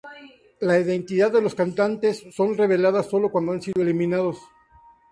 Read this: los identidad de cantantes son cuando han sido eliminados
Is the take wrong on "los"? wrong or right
wrong